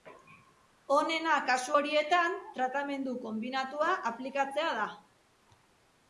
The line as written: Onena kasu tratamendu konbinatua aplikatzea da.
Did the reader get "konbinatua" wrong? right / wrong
right